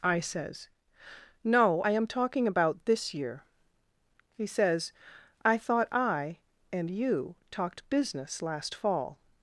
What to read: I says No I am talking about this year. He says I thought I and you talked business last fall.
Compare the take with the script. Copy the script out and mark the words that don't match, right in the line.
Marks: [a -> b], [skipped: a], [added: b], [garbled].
I says No I am talking about this year. He says I thought I and you talked business last fall.